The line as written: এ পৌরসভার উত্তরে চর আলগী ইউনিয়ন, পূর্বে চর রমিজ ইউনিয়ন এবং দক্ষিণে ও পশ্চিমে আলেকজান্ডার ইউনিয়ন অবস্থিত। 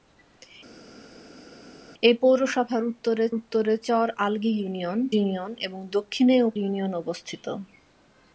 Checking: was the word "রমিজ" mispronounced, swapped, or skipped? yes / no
yes